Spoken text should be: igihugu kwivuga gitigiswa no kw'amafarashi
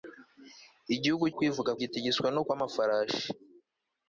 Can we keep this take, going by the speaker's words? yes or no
yes